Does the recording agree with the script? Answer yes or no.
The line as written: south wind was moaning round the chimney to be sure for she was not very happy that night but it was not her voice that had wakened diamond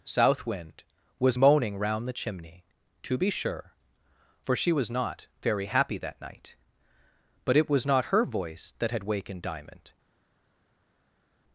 yes